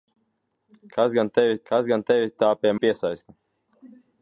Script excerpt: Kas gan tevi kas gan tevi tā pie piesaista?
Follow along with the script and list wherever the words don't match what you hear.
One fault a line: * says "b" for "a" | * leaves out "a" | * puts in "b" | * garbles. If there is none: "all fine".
all fine